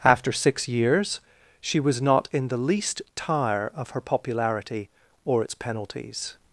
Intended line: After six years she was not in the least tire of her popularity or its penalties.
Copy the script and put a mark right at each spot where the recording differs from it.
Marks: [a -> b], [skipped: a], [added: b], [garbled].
After six years she was not in the least tire of her popularity or its penalties.